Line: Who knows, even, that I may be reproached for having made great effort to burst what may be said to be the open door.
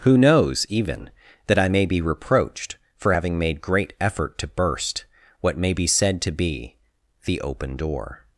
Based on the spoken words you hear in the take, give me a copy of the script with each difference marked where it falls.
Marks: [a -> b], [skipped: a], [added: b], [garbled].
Who knows, even, that I may be reproached for having made great effort to burst what may be said to be the open door.